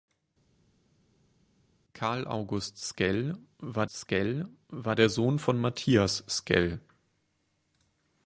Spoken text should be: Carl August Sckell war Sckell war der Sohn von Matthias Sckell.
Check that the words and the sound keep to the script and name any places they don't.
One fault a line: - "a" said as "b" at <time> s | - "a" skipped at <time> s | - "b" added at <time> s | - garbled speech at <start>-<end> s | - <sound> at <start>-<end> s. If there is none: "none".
none